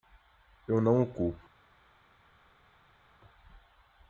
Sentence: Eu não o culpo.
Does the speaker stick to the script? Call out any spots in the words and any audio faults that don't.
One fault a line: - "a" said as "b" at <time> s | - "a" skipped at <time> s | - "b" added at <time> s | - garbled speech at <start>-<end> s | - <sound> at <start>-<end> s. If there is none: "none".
none